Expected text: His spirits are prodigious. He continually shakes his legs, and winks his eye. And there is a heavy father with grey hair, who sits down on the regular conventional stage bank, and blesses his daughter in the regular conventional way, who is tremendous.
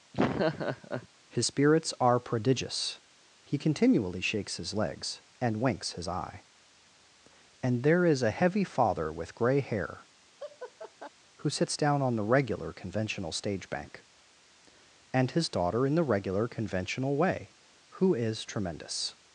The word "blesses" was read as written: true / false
false